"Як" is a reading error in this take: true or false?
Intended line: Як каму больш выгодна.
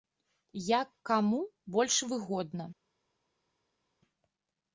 false